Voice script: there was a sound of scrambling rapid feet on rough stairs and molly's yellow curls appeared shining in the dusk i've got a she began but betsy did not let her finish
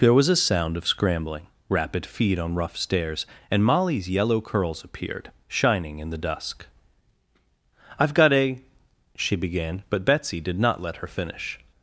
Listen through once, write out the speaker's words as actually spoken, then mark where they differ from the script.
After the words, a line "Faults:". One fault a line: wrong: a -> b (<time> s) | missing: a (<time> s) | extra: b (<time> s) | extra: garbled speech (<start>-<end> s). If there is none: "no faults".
there was a sound of scrambling rapid feet on rough stairs and molly's yellow curls appeared shining in the dusk i've got a she began but betsy did not let her finish
Faults:
no faults